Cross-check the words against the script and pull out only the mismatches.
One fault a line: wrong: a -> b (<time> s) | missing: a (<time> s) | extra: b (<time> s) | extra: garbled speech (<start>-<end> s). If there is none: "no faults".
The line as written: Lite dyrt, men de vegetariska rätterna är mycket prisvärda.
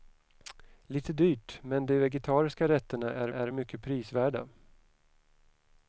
extra: är (3.3 s)